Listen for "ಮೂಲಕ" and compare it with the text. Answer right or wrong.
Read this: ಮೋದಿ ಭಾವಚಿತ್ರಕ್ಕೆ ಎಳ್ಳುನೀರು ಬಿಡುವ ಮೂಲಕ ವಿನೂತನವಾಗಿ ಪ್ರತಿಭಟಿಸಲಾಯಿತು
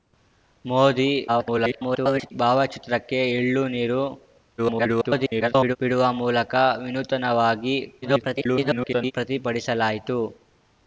right